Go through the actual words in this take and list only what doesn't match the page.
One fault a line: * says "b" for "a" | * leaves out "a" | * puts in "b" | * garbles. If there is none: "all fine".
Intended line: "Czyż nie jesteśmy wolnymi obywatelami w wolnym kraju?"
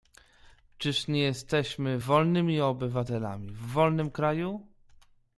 all fine